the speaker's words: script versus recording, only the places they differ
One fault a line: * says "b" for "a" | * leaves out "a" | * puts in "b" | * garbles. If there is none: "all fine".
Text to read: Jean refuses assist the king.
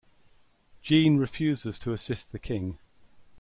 * puts in "to"